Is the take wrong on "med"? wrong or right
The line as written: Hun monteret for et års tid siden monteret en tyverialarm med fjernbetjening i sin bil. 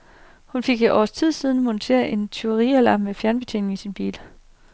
right